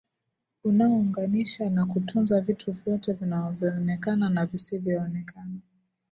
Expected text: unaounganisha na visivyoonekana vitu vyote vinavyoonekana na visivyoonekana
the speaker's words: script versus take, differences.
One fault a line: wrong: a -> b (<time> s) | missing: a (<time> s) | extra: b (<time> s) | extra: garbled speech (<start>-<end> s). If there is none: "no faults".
wrong: visivyoonekana -> kutunza (1.9 s)